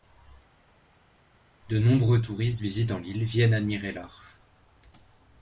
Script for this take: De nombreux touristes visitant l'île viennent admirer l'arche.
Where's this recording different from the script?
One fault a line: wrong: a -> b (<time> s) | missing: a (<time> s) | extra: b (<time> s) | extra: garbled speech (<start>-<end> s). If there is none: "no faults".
no faults